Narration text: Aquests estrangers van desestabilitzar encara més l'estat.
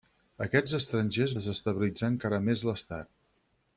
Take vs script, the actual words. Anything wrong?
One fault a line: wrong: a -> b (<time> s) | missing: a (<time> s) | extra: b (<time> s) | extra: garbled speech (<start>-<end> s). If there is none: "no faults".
missing: van (1.4 s)